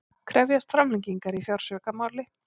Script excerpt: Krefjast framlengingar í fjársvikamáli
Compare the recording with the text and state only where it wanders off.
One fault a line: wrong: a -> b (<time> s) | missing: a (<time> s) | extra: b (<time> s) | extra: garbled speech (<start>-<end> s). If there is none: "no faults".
no faults